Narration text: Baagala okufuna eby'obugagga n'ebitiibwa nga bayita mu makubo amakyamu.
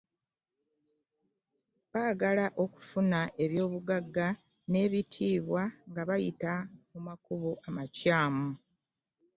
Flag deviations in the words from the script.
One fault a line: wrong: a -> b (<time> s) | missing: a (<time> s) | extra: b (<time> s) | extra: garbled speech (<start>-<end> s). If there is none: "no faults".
no faults